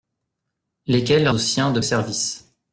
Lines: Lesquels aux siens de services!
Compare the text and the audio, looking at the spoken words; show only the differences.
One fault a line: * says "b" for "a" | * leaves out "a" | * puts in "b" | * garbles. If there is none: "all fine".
all fine